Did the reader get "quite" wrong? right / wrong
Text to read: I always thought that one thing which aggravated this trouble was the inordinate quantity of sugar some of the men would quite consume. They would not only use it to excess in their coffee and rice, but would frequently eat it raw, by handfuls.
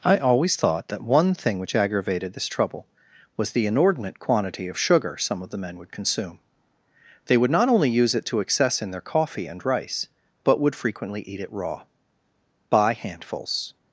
wrong